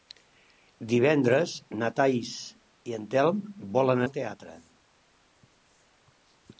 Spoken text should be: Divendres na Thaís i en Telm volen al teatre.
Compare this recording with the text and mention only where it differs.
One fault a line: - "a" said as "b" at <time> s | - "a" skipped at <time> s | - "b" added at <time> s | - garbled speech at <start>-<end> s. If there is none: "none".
none